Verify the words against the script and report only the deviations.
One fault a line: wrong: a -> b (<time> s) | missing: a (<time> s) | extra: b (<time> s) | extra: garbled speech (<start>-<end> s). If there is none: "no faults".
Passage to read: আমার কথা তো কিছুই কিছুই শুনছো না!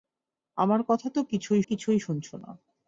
no faults